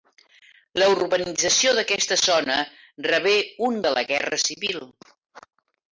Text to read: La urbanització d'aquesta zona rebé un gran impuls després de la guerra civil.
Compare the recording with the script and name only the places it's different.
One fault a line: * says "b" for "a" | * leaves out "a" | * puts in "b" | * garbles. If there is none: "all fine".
* leaves out "gran impuls després"